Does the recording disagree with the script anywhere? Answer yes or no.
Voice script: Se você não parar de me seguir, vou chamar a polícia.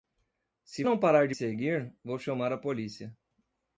yes